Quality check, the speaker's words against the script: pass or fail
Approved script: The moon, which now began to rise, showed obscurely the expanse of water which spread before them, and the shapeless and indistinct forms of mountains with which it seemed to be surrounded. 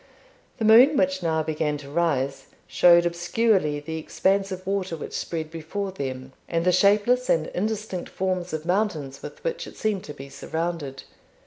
pass